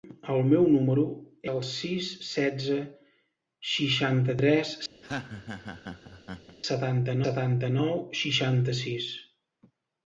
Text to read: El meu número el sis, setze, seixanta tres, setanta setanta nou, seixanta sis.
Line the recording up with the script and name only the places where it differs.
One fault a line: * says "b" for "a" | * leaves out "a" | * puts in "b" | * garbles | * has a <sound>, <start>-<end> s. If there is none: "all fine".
* has a laugh, 5.0-6.6 s